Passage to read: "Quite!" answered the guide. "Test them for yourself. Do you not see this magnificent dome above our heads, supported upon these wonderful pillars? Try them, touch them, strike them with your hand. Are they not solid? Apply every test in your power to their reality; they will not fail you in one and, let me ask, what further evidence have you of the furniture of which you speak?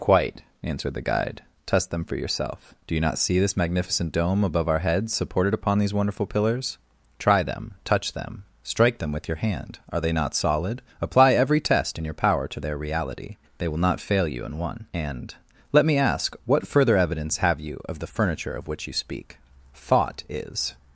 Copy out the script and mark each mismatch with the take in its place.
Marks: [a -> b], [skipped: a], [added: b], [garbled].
"Quite!" answered the guide. "Test them for yourself. Do you not see this magnificent dome above our heads, supported upon these wonderful pillars? Try them, touch them, strike them with your hand. Are they not solid? Apply every test in your power to their reality; they will not fail you in one and, let me ask, what further evidence have you of the furniture of which you speak? [added: Thought is]